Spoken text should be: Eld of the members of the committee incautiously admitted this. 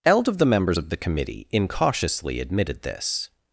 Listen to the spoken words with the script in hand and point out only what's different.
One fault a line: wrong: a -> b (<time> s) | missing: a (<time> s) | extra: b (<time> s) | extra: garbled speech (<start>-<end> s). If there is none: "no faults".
no faults